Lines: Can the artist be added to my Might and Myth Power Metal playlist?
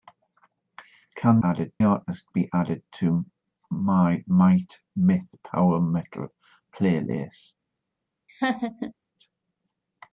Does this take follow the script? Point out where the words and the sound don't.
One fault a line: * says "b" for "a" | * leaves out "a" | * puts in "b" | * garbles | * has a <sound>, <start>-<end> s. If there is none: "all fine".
* says "added" for "the"
* leaves out "and"
* has a laugh, 8.3-8.9 s